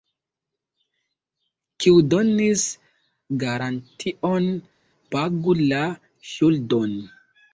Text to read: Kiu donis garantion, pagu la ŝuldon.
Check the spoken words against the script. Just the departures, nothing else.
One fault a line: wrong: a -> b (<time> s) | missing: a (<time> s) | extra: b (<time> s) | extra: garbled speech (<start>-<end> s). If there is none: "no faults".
no faults